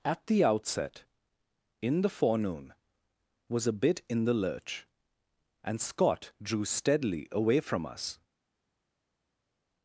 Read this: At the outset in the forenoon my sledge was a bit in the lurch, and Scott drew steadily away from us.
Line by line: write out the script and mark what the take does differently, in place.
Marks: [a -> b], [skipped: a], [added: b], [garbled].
At the outset in the forenoon [skipped: my sledge] was a bit in the lurch, and Scott drew steadily away from us.